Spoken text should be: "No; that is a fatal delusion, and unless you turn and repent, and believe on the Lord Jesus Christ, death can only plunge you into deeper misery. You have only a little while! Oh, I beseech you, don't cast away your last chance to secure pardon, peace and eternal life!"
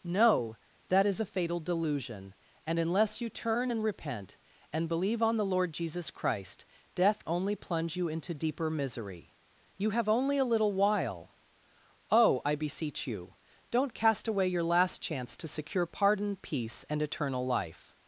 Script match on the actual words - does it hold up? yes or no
no